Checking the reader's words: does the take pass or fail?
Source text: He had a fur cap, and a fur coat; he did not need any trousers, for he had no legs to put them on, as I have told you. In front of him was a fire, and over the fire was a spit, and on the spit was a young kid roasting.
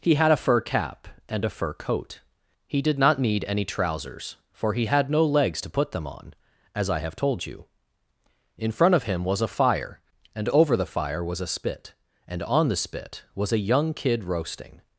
pass